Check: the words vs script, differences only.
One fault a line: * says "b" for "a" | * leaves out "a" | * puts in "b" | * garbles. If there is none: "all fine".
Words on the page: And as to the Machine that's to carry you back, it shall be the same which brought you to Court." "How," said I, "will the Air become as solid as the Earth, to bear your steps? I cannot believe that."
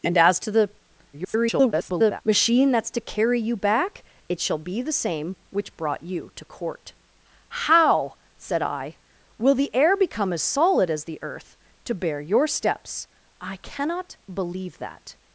* garbles